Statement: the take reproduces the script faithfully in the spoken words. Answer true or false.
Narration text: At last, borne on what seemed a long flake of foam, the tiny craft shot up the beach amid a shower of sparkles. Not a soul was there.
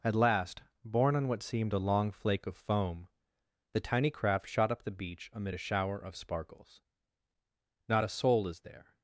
false